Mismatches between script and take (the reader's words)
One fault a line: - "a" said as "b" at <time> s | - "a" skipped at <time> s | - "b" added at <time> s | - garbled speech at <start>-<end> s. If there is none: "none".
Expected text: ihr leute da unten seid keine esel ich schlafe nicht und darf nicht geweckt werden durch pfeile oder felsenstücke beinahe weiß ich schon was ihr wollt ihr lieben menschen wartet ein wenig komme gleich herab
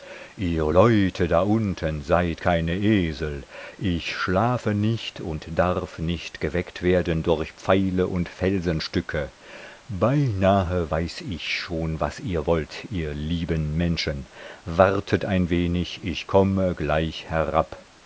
- "oder" said as "und" at 8.1 s
- "ich" added at 16.0 s